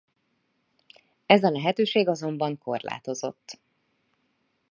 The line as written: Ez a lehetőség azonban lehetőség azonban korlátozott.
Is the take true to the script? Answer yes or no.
no